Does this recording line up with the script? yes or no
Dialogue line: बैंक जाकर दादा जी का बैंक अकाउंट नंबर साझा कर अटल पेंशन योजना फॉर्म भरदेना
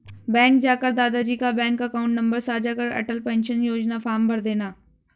yes